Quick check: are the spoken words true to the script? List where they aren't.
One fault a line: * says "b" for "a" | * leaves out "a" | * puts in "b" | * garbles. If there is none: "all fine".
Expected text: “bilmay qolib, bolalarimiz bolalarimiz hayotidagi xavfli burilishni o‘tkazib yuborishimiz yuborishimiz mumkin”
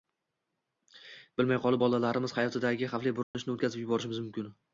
* leaves out "bolalarimiz"
* leaves out "yuborishimiz"